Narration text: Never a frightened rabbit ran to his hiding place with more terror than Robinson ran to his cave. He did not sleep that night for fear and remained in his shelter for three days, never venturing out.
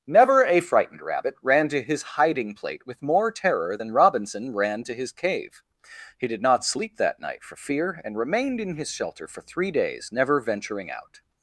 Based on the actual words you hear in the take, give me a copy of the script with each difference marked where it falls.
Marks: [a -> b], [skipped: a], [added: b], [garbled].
Never a frightened rabbit ran to his hiding [place -> plate] with more terror than Robinson ran to his cave. He did not sleep that night for fear and remained in his shelter for three days, never venturing out.